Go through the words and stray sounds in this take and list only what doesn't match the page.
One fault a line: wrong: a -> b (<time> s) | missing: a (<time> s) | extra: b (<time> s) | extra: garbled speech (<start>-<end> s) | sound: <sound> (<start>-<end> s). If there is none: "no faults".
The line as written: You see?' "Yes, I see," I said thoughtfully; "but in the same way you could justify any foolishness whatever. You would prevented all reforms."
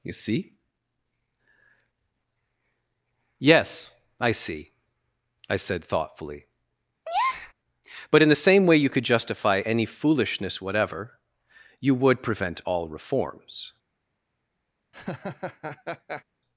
sound: breath (7.0-7.5 s)
wrong: prevented -> prevent (12.2 s)
sound: laugh (14.9-16.2 s)